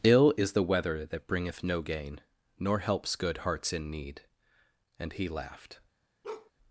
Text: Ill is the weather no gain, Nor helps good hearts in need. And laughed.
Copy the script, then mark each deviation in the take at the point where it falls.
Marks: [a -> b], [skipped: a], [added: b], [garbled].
Ill is the weather [added: that bringeth] no gain, Nor helps good hearts in need. And [added: he] laughed.